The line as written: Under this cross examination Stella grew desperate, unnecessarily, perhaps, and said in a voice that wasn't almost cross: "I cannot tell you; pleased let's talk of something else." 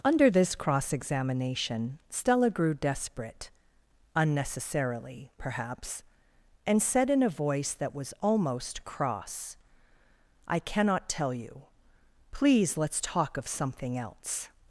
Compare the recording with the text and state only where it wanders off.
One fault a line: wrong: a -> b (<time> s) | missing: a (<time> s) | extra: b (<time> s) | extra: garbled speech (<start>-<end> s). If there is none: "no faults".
wrong: wasn't -> was (7.9 s)
wrong: pleased -> please (12.3 s)